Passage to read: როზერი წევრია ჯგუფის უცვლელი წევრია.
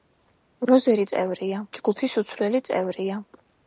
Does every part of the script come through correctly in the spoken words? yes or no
yes